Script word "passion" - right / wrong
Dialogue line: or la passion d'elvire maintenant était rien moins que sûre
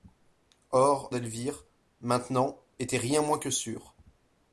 wrong